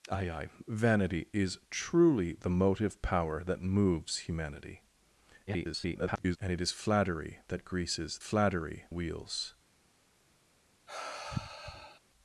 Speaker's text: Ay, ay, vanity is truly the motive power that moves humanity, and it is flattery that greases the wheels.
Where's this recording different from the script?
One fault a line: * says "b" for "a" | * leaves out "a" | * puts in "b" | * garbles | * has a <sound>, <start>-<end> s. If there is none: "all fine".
* garbles
* says "flattery" for "the"
* has a sigh, 10.9-12.0 s